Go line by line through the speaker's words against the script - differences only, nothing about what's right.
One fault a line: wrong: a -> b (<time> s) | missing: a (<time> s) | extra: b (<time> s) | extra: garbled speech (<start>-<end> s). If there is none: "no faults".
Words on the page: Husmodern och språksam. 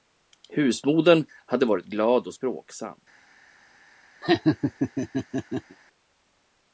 extra: hade varit glad (1.4 s)